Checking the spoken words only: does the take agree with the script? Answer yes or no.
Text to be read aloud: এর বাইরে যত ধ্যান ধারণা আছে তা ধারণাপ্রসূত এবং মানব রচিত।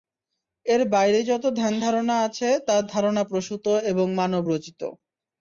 yes